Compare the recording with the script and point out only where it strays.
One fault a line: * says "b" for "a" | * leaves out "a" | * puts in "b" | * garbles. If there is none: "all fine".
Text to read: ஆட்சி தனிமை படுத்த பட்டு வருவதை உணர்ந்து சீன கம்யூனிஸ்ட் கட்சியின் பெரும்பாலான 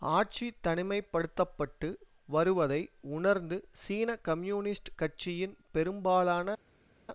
all fine